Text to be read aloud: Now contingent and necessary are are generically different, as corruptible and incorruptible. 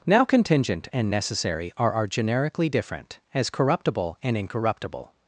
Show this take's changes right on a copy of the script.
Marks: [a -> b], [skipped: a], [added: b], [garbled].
Now contingent and necessary are are generically different, as corruptible and incorruptible.